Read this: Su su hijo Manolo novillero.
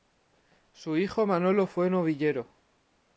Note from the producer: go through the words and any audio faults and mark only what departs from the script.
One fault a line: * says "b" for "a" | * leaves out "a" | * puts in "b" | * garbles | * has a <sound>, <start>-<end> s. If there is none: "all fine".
* leaves out "su"
* puts in "fue"